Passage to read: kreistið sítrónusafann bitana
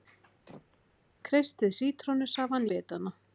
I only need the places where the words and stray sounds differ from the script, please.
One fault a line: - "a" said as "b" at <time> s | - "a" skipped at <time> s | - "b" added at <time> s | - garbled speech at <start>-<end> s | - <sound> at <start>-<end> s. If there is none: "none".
- throat clearing at 0.5-0.8 s